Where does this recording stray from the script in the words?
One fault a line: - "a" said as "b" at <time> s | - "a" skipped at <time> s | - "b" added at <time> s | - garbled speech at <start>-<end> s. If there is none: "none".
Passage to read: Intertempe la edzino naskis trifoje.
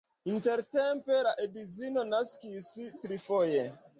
none